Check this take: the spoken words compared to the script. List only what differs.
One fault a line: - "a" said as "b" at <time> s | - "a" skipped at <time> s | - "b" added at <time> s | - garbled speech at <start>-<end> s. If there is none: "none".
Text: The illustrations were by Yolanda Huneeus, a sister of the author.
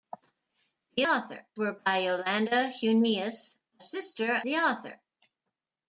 - "illustrations" said as "author" at 1.0 s
- "of" skipped at 4.3 s